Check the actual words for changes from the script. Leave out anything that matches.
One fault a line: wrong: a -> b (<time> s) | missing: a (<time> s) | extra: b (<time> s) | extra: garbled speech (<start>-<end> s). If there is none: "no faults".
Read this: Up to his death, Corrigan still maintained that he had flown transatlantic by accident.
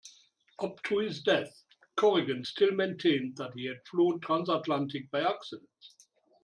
no faults